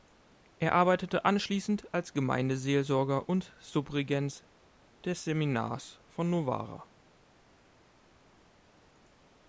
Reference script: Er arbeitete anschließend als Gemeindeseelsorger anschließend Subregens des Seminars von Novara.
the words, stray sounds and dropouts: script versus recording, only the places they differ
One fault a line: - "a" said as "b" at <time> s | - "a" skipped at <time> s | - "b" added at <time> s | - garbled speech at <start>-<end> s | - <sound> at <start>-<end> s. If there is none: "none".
- "anschließend" said as "und" at 3.3 s